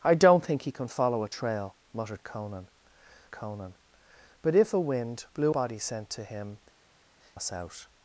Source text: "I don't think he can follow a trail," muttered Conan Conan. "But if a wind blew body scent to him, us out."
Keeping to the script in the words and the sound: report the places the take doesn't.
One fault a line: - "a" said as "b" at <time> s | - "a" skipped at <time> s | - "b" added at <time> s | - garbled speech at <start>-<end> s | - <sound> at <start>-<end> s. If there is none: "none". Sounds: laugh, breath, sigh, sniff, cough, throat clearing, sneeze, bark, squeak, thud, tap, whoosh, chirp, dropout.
none